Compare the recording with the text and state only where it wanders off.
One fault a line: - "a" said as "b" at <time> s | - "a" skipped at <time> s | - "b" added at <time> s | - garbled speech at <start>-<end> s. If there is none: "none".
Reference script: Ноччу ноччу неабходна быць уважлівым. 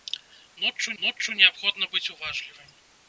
none